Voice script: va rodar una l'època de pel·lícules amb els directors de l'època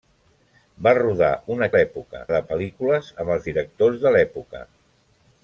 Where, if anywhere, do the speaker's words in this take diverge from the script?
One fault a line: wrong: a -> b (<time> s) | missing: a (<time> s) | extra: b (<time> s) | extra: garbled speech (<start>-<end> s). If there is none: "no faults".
no faults